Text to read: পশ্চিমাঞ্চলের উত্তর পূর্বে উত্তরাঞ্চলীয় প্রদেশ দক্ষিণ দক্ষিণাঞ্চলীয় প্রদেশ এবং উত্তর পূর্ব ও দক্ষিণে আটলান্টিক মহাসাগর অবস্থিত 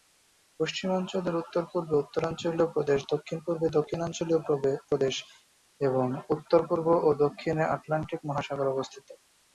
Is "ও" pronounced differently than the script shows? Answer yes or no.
no